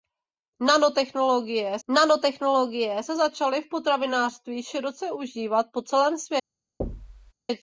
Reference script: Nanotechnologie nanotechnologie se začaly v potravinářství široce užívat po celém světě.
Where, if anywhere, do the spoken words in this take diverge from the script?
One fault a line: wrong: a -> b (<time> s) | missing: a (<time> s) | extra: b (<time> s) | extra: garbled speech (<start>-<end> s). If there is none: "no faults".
no faults